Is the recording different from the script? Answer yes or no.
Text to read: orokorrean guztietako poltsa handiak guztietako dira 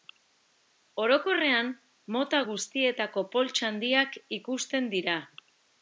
yes